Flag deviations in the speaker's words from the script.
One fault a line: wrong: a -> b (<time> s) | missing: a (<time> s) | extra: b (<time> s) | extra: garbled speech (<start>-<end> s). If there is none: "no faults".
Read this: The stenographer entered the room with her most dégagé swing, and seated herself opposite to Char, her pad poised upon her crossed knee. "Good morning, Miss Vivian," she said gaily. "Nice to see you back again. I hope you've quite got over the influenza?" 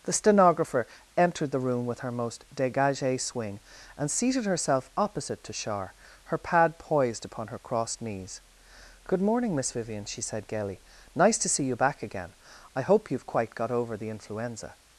wrong: knee -> knees (8.0 s)